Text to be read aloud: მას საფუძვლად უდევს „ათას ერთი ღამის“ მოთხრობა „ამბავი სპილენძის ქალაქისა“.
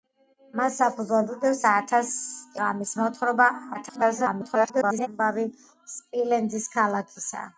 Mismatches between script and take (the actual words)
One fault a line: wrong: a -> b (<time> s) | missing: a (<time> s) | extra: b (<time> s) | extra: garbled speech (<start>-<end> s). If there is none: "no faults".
missing: ერთი (2.1 s)
extra: garbled speech (3.7-5.1 s)